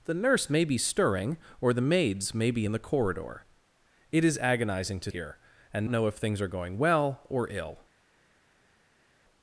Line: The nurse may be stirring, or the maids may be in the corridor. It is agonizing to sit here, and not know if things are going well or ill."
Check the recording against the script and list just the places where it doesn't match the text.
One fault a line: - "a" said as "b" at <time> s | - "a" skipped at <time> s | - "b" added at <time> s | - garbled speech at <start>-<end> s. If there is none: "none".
- "sit" skipped at 5.1 s
- "not" skipped at 5.9 s